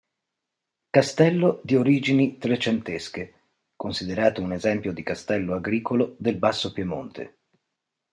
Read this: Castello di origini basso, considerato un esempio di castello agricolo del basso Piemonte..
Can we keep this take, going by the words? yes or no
no